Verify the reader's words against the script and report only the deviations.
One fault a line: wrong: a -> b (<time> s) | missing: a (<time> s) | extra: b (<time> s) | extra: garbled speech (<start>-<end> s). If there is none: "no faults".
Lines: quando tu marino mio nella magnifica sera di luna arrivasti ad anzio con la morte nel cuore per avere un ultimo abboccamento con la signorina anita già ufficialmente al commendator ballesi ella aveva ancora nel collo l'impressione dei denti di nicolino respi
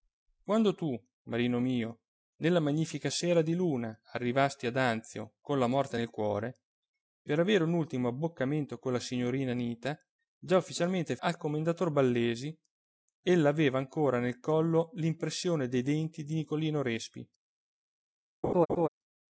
no faults